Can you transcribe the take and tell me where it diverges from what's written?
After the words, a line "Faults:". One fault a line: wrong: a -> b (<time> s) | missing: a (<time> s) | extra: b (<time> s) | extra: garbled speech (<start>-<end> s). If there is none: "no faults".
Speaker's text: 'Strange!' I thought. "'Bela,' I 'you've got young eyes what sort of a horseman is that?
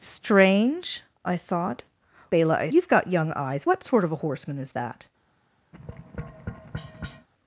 'Strange!' I thought. "'Bela,' I 'you've got young eyes what sort of a horseman is that?
Faults:
no faults